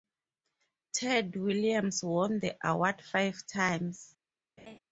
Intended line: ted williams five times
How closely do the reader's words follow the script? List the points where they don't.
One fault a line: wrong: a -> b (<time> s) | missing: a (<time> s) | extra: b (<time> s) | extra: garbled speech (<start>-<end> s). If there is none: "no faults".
extra: won the award (2.0 s)